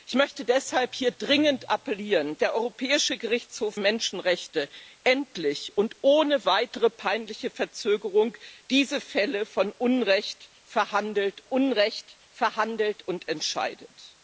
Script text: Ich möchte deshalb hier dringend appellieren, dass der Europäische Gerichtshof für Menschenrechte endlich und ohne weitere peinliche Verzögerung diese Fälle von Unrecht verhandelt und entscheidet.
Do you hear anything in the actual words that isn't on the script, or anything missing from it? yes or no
yes